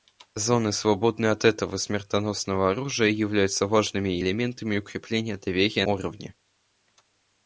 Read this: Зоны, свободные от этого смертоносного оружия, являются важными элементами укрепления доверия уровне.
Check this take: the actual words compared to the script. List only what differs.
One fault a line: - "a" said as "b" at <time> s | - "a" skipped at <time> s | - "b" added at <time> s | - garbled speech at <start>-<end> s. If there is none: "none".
none